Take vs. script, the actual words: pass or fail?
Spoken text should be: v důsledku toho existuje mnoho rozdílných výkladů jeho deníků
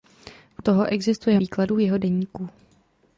fail